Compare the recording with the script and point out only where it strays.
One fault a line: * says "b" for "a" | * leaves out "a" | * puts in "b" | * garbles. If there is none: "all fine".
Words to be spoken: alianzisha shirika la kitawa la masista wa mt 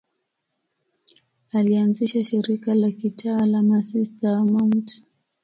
all fine